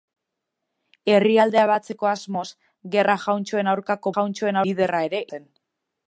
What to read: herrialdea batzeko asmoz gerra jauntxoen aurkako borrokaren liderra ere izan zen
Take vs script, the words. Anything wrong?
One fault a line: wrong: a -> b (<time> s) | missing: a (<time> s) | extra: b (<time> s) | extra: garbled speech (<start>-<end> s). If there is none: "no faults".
wrong: borrokaren -> jauntxoen (4.1 s)
missing: izan (5.2 s)